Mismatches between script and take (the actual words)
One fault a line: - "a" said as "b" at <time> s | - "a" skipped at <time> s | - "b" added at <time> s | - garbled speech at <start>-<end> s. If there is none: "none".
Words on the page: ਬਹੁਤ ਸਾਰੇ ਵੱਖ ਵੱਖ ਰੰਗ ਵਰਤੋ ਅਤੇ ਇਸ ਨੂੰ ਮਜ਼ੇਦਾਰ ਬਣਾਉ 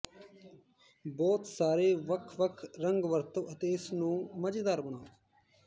none